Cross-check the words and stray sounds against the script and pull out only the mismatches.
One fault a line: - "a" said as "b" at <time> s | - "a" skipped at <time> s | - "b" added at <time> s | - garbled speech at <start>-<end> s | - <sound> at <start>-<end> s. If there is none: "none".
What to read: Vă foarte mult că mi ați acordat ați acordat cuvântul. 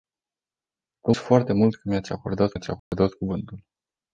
- dropout at 2.8-2.9 s